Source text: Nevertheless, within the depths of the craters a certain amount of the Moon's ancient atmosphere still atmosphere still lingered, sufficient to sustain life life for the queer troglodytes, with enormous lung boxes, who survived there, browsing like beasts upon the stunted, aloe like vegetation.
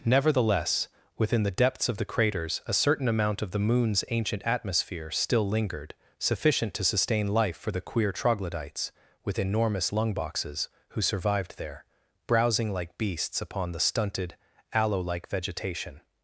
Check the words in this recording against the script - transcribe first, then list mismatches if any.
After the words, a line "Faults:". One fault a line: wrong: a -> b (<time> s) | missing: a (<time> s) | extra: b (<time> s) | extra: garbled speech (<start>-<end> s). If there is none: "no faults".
Nevertheless, within the depths of the craters a certain amount of the Moon's ancient atmosphere still lingered, sufficient to sustain life for the queer troglodytes, with enormous lung boxes, who survived there, browsing like beasts upon the stunted, aloe like vegetation.
Faults:
missing: atmosphere still (5.5 s)
missing: life (7.6 s)